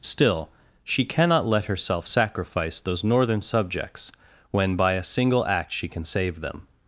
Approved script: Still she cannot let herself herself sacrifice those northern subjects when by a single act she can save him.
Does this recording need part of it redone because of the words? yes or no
yes